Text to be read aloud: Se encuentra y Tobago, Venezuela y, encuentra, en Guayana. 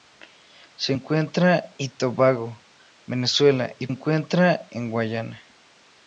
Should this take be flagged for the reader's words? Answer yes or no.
no